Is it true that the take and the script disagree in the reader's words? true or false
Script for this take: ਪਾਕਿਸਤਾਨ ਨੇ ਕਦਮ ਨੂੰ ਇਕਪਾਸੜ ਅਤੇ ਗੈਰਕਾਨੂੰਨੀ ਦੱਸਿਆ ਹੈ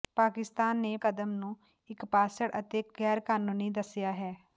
false